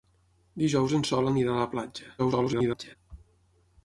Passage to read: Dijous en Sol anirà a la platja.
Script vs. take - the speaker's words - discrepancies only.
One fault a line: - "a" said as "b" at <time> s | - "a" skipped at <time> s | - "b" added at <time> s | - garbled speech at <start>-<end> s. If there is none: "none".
- garbled speech at 2.2-3.0 s